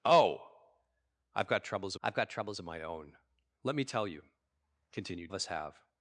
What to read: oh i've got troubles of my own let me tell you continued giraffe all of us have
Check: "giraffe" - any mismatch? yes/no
yes